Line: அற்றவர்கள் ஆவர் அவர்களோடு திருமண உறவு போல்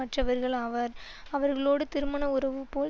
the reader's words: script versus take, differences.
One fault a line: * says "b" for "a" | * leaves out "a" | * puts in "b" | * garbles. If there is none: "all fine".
all fine